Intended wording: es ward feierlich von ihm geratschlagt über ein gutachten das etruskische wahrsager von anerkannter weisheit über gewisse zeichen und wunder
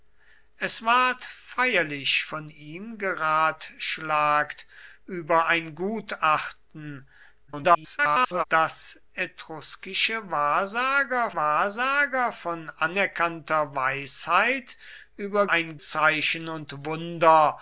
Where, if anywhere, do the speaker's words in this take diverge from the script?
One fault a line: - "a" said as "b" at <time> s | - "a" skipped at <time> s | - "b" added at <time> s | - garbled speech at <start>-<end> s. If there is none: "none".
- garbled speech at 7.5-8.4 s
- "wahrsager" added at 11.3 s
- "gewisse" said as "ein" at 15.5 s